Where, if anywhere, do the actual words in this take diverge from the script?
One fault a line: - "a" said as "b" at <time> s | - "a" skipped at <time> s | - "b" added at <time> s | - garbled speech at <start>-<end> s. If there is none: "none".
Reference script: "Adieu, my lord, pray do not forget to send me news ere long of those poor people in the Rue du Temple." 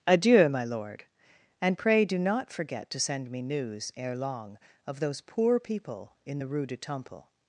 - "and" added at 1.6 s